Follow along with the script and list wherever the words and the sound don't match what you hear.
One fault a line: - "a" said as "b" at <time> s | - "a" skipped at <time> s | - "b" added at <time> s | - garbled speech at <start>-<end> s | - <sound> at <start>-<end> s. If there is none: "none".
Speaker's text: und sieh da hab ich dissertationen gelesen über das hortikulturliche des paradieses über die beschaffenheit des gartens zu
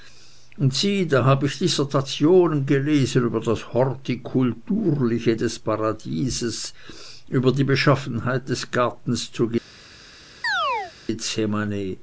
- chirp at 10.4-10.9 s